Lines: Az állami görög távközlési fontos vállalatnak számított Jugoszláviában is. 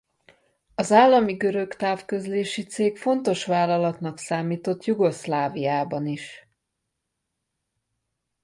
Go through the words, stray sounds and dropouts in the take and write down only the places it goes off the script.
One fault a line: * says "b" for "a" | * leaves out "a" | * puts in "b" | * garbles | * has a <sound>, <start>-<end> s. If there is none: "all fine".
* puts in "cég"